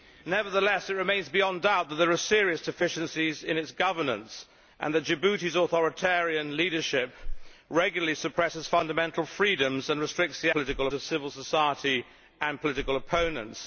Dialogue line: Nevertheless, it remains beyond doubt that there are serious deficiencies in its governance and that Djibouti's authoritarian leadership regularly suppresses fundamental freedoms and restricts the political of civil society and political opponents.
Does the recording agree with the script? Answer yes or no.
yes